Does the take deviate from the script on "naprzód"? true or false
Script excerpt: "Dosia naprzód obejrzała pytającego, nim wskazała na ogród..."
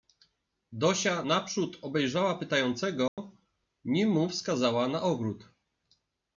false